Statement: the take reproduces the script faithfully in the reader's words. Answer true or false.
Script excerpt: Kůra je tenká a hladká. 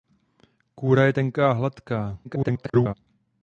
false